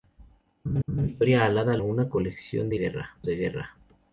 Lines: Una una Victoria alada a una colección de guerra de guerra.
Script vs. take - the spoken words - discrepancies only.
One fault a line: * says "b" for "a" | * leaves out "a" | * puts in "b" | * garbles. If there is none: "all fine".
all fine